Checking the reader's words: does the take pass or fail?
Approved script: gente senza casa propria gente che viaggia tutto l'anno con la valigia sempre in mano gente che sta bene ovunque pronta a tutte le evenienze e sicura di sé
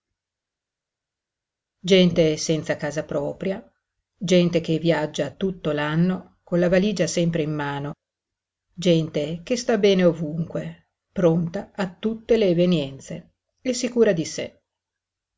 pass